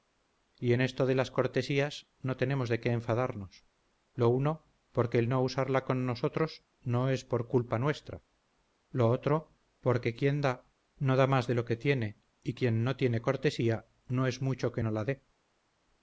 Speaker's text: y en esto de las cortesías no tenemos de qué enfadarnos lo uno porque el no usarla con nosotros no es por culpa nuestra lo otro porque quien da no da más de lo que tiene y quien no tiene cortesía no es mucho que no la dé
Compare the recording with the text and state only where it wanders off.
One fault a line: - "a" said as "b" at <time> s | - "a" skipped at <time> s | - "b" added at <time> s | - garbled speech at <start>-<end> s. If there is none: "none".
none